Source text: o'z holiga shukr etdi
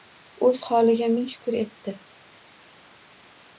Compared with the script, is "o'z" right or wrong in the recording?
right